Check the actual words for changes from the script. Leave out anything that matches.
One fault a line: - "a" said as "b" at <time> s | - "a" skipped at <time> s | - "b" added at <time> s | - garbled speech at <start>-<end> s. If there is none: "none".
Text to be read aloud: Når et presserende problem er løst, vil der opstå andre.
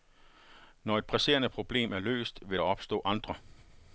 none